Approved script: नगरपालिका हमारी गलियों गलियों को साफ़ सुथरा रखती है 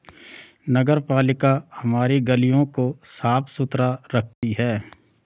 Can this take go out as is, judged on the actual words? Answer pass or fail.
fail